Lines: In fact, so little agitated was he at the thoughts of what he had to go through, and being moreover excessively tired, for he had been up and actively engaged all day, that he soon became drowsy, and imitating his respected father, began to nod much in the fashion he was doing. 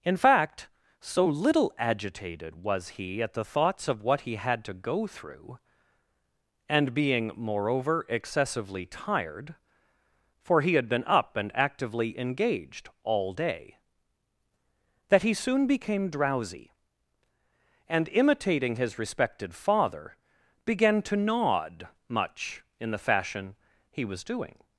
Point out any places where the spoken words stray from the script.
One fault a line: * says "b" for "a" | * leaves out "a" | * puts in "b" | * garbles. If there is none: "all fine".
all fine